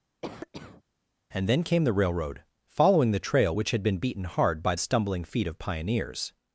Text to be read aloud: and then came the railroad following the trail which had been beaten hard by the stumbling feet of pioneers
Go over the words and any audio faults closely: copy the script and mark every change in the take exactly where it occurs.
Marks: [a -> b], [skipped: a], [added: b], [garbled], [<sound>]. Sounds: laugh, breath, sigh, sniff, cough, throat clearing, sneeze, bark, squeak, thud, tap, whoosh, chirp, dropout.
[cough] and then came the railroad following the trail which had been beaten hard by [skipped: the] stumbling feet of pioneers